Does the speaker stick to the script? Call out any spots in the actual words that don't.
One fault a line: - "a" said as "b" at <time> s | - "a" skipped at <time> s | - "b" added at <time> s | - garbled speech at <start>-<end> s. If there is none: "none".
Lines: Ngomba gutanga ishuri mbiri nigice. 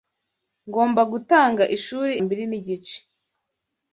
none